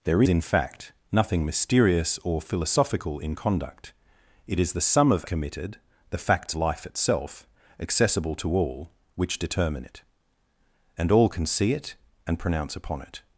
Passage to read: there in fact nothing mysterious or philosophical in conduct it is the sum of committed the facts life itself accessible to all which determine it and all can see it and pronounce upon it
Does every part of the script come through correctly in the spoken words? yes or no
yes